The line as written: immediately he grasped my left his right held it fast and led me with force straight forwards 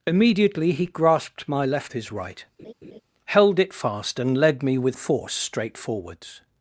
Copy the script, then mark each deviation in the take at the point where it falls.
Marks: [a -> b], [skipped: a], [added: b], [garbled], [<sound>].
immediately he grasped my left his right [laugh] held it fast and led me with force straight forwards